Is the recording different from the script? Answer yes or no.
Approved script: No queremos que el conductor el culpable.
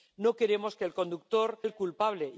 no